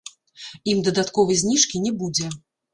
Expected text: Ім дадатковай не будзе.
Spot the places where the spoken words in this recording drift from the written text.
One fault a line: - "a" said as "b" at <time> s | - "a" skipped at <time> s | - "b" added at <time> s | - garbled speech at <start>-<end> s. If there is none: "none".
- "зніжкі" added at 1.4 s